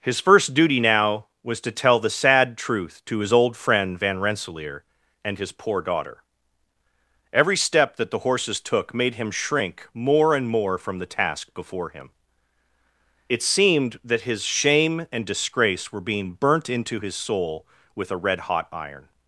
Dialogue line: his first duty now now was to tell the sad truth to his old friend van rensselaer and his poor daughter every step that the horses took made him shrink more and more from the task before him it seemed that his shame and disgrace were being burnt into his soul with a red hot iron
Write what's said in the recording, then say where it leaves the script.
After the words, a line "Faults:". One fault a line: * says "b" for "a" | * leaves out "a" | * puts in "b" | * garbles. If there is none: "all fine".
his first duty now was to tell the sad truth to his old friend van rensselaer and his poor daughter every step that the horses took made him shrink more and more from the task before him it seemed that his shame and disgrace were being burnt into his soul with a red hot iron
Faults:
* leaves out "now"